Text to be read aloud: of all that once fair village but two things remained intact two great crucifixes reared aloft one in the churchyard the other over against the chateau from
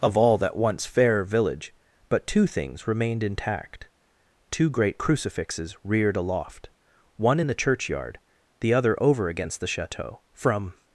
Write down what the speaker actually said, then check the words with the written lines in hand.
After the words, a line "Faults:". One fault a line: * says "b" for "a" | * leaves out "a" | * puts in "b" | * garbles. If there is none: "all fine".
of all that once fair village but two things remained intact two great crucifixes reared aloft one in the churchyard the other over against the chateau from
Faults:
all fine